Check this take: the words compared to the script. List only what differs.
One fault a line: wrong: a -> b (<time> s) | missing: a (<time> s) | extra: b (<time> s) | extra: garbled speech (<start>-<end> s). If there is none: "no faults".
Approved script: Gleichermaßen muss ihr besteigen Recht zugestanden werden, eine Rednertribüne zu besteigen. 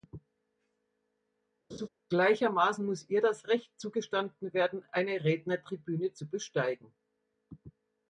wrong: besteigen -> das (3.2 s)